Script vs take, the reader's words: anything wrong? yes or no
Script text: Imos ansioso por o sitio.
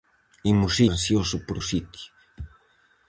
no